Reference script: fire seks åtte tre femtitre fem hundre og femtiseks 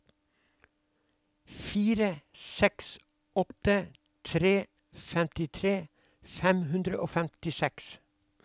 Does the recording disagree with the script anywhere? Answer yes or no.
no